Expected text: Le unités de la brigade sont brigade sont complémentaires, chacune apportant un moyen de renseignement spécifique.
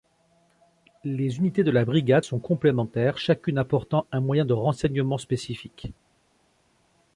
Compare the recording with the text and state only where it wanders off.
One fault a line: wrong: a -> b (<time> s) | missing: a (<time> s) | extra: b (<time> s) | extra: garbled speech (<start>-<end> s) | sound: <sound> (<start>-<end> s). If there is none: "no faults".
wrong: Le -> Les (1.0 s)
missing: brigade sont (2.4 s)